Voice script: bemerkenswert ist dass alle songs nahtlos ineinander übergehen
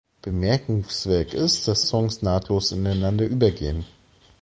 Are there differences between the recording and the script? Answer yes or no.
yes